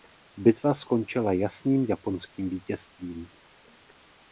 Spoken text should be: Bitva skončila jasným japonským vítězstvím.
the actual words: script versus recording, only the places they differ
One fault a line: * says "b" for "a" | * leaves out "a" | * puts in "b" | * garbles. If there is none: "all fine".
all fine